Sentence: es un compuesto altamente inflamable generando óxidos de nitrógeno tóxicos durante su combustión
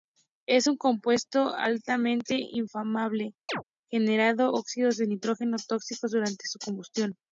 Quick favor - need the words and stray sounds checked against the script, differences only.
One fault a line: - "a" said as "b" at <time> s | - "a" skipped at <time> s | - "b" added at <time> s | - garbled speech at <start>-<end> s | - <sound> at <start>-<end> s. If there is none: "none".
- chirp at 3.5-3.6 s